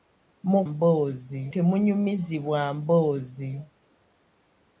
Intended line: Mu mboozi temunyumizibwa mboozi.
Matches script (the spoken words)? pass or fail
pass